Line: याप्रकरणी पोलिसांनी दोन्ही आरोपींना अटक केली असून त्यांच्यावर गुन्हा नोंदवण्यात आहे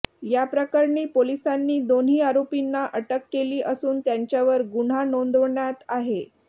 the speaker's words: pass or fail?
pass